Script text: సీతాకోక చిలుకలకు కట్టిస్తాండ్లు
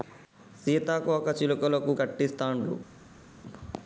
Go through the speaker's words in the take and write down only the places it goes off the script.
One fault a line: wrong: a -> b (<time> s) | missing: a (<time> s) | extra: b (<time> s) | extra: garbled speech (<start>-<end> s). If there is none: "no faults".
no faults